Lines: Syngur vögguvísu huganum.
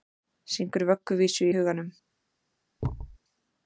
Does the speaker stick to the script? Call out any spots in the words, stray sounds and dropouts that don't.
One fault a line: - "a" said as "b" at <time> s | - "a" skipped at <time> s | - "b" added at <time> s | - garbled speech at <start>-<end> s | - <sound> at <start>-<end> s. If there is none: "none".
- thud at 2.8-3.2 s